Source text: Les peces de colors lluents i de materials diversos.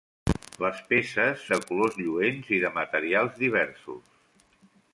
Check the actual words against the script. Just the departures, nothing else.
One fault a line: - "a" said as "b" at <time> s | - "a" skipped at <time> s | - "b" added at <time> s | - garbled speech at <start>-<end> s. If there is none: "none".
none